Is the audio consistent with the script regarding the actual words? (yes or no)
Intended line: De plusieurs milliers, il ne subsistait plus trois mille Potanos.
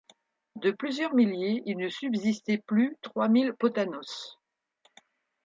yes